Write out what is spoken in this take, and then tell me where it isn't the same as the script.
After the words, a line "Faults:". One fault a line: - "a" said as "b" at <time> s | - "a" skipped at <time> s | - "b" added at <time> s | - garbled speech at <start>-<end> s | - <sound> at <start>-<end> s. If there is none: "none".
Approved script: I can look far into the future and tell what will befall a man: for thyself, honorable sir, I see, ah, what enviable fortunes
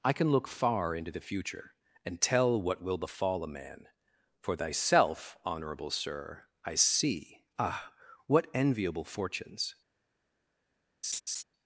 I can look far into the future and tell what will befall a man: for thyself, honorable sir, I see, ah, what enviable fortunes
Faults:
- laugh at 11.0-11.4 s